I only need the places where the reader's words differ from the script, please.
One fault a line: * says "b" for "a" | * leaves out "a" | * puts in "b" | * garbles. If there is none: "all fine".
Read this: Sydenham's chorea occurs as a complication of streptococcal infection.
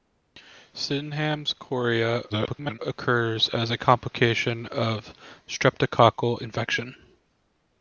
* garbles